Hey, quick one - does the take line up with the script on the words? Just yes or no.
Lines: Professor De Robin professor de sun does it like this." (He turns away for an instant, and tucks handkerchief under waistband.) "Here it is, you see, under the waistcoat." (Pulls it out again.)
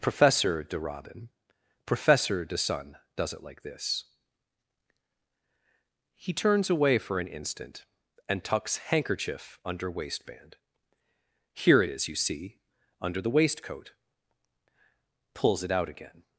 yes